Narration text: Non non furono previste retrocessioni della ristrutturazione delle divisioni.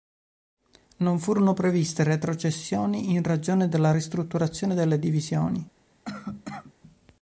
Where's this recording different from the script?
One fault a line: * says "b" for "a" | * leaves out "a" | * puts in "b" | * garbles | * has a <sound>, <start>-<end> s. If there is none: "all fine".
* leaves out "non"
* puts in "in ragione"
* has a cough, 6.1-6.7 s